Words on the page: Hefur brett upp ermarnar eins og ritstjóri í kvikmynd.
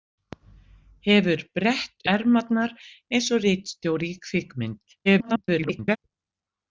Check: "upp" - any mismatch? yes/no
yes